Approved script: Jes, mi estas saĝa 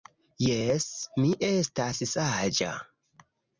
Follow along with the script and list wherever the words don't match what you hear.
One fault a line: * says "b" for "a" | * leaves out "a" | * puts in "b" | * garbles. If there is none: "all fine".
all fine